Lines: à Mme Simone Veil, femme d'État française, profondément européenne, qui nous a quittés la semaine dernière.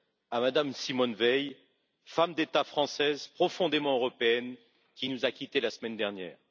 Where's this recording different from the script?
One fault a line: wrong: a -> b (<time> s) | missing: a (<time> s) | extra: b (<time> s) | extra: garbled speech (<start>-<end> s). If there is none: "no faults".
no faults